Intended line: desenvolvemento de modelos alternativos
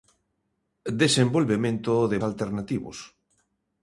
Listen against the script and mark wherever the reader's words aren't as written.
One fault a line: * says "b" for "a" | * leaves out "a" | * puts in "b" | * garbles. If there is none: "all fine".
* leaves out "modelos"